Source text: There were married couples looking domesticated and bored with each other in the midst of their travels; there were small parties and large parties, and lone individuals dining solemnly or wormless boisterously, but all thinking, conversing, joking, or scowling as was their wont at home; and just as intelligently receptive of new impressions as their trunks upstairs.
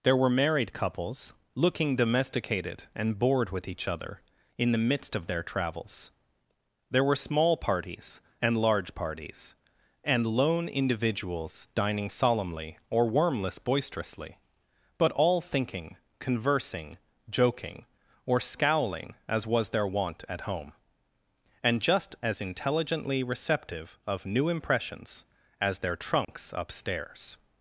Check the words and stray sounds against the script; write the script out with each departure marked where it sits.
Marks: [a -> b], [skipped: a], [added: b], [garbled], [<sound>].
There were married couples looking domesticated and bored with each other in the midst of their travels; there were small parties and large parties, and lone individuals dining solemnly or wormless boisterously, but all thinking, conversing, joking, or scowling as was their wont at home; and just as intelligently receptive of new impressions as their trunks [dropout] upstairs.